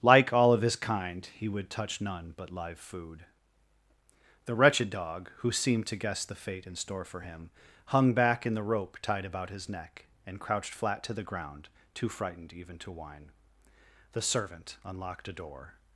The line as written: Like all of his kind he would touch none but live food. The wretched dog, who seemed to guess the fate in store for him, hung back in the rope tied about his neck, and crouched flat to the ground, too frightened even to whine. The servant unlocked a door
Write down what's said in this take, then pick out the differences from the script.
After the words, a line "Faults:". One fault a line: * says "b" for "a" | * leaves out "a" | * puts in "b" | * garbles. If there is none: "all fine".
Like all of his kind he would touch none but live food. The wretched dog, who seemed to guess the fate in store for him, hung back in the rope tied about his neck, and crouched flat to the ground, too frightened even to whine. The servant unlocked a door
Faults:
all fine